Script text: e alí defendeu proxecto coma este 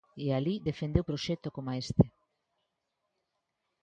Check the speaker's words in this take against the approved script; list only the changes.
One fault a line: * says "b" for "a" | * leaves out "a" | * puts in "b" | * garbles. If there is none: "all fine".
all fine